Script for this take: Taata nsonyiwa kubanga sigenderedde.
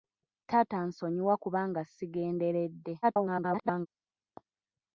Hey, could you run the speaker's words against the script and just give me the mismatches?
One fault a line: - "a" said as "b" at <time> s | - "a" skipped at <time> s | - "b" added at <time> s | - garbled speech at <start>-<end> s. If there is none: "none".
- garbled speech at 3.0-3.9 s